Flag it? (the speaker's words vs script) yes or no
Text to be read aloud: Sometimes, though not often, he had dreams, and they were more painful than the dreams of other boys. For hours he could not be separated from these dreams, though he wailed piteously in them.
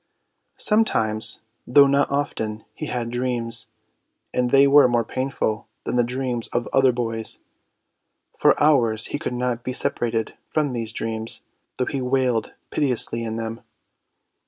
no